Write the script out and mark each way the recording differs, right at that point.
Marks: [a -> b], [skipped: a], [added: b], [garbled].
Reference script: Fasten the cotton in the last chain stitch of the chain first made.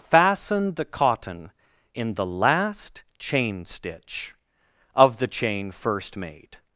Fasten the cotton in the last chain stitch of the chain first made.